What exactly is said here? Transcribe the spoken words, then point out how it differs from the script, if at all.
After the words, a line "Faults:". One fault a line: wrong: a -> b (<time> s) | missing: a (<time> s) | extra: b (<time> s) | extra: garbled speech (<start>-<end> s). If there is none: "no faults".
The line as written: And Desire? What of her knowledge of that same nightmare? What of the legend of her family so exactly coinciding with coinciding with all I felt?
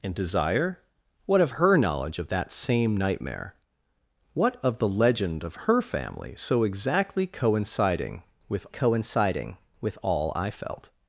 And Desire? What of her knowledge of that same nightmare? What of the legend of her family so exactly coinciding with coinciding with all I felt?
Faults:
no faults